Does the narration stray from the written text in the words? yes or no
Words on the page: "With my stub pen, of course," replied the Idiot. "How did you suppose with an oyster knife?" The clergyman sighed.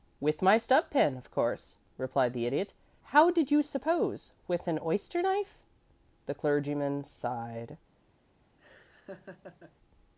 no